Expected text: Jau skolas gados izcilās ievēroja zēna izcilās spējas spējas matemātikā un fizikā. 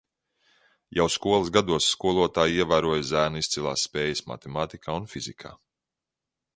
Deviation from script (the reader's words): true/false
true